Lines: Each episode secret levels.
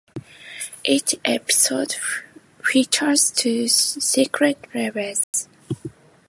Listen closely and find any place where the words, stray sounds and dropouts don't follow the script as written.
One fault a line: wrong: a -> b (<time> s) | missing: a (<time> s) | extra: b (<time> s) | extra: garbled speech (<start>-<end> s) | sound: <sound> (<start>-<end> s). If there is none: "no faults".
extra: features two (2.6 s)
sound: dropout (5.2-5.3 s)